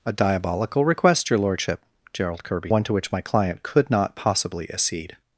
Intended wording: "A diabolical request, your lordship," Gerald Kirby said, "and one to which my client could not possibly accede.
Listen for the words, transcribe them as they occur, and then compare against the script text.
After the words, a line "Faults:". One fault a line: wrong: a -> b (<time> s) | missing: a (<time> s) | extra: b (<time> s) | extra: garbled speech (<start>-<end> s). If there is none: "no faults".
"A diabolical request, your lordship," Gerald Kirby one to which my client could not possibly accede.
Faults:
missing: said and (2.7 s)